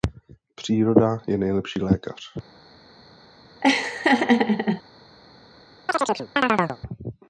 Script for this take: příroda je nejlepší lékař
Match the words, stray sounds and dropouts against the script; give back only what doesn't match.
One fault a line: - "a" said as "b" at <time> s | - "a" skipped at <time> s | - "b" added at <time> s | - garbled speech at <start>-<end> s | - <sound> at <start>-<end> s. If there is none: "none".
- laugh at 3.6-4.8 s
- chirp at 5.9-6.8 s